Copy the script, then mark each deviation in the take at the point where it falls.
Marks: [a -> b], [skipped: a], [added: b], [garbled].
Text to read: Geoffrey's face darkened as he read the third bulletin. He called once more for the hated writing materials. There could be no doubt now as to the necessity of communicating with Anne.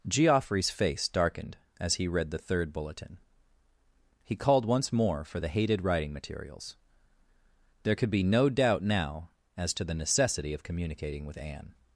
Geoffrey's face darkened as he read the third bulletin. He called once more for the hated writing materials. There could be no doubt now as to the necessity of communicating with Anne.